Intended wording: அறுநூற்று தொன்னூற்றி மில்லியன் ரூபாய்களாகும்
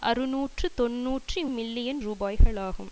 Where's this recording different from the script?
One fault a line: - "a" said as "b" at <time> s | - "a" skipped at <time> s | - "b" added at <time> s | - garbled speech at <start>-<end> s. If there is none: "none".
none